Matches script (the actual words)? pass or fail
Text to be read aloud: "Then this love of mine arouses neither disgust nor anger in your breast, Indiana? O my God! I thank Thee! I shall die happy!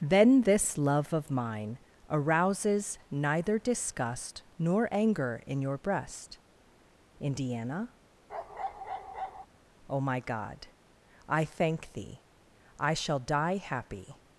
pass